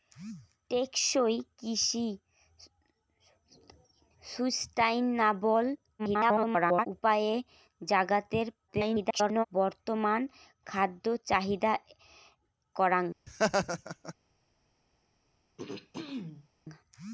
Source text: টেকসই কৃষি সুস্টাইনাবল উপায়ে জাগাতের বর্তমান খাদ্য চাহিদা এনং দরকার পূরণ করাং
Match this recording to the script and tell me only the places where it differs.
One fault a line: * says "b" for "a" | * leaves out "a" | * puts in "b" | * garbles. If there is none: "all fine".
* garbles
* garbles
* leaves out "এনং দরকার পূরণ"